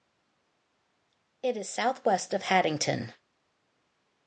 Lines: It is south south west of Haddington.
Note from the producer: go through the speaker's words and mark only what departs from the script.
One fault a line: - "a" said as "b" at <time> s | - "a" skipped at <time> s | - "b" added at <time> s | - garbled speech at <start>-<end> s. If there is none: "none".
- "south" skipped at 2.0 s